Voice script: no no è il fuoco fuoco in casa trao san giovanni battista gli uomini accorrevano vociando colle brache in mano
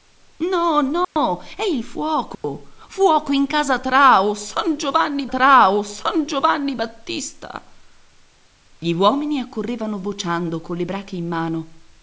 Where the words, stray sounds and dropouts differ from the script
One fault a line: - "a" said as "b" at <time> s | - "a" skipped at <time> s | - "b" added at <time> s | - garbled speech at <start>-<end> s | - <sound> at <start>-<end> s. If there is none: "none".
- dropout at 1.0-1.2 s
- dropout at 2.3-2.4 s
- "trao san giovanni" added at 5.2 s